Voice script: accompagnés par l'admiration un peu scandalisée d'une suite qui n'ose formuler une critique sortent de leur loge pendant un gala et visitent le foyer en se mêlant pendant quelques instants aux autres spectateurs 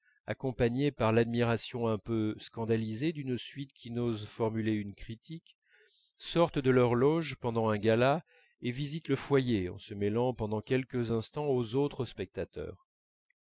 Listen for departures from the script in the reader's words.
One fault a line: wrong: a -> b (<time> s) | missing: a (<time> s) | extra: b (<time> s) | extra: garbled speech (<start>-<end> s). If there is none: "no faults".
no faults